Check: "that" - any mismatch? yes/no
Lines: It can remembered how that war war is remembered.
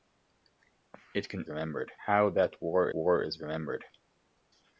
no